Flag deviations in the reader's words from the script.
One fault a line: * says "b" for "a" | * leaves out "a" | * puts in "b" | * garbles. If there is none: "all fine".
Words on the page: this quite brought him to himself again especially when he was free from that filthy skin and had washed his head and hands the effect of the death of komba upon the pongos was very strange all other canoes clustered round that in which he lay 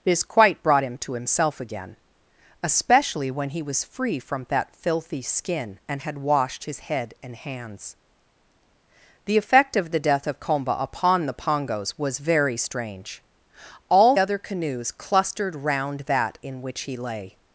all fine